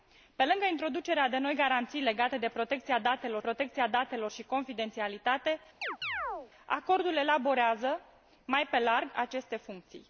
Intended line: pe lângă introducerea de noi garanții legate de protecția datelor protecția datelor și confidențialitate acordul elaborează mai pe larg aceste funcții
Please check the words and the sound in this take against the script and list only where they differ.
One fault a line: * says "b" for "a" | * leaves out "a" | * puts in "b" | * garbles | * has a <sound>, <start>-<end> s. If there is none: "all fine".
* has a chirp, 5.8-6.5 s